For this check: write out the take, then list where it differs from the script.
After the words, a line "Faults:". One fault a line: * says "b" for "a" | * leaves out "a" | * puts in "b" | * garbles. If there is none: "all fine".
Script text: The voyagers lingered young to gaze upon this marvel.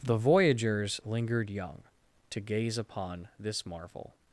The voyagers lingered young to gaze upon this marvel.
Faults:
all fine